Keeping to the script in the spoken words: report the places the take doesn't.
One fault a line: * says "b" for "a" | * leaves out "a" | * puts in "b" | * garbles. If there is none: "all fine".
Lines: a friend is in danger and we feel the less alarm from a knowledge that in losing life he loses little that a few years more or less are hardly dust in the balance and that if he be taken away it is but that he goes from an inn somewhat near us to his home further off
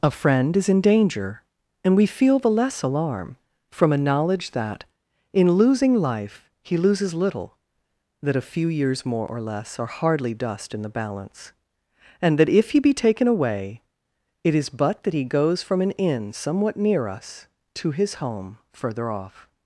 all fine